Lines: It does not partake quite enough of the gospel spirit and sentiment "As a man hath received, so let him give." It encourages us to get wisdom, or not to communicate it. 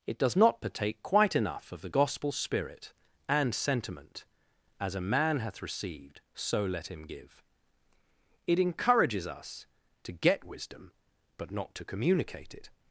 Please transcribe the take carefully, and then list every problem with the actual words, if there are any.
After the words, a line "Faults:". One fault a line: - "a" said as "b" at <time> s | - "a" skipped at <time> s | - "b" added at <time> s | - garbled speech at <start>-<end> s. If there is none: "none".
It does not partake quite enough of the gospel spirit and sentiment "As a man hath received, so let him give." It encourages us to get wisdom, but not to communicate it.
Faults:
- "or" said as "but" at 11.4 s